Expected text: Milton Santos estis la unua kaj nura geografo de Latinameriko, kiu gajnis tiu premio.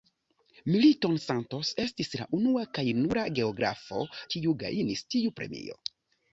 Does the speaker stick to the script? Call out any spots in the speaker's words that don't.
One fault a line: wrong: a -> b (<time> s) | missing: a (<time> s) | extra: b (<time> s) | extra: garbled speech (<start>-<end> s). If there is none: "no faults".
missing: de Latinameriko (4.1 s)